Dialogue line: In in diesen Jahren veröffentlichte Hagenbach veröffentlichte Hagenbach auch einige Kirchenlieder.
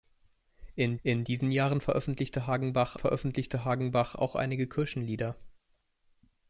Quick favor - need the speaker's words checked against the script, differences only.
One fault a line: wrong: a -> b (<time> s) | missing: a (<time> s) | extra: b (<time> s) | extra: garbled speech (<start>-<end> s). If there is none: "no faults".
no faults